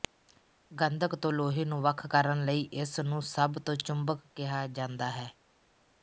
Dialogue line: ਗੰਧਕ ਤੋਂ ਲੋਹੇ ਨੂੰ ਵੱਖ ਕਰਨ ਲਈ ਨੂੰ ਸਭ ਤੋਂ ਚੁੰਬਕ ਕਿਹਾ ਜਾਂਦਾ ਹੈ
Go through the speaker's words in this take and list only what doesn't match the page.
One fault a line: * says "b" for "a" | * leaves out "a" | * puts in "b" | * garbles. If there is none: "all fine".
* puts in "ਇਸ"